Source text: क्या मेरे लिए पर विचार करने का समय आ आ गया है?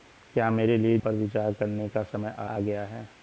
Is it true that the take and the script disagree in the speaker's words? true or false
false